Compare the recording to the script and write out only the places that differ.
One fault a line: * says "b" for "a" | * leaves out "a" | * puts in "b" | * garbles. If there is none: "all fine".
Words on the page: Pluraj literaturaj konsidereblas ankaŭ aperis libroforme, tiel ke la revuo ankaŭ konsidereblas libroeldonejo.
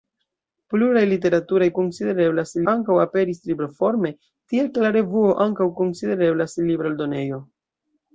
all fine